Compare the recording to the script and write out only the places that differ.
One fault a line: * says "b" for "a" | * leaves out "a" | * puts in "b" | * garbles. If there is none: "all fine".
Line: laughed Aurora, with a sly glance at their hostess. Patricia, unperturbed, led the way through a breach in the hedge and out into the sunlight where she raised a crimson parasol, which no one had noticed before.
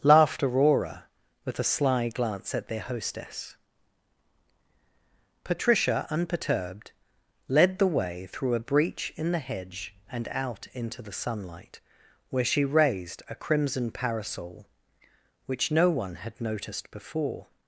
all fine